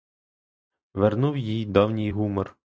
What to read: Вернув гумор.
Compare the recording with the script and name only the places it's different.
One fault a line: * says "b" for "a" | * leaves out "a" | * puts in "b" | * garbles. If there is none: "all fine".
* puts in "їй давній"